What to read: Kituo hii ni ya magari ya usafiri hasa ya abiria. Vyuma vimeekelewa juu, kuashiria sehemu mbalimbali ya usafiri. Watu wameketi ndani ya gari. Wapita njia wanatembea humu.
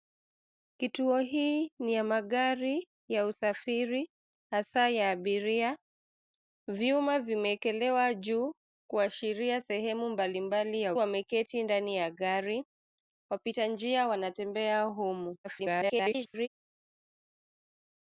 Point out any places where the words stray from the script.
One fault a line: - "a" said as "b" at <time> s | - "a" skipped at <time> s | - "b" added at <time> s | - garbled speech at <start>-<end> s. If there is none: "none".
- "usafiri Watu" skipped at 10.9 s
- garbled speech at 15.4-16.5 s